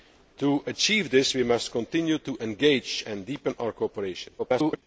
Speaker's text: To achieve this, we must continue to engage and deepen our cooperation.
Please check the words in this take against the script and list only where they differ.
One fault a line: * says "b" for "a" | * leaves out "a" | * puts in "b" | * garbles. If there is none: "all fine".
* garbles